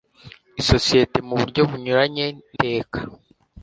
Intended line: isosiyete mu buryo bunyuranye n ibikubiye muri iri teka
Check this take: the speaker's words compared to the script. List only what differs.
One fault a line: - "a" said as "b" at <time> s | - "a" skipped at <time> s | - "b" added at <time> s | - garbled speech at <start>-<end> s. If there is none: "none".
- "ibikubiye muri iri" skipped at 2.5 s